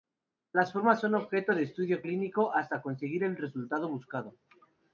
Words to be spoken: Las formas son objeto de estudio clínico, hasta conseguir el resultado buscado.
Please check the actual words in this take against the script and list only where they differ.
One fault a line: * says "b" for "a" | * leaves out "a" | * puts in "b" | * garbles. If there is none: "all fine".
all fine